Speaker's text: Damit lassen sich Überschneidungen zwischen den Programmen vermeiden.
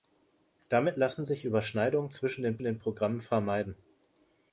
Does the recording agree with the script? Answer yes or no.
no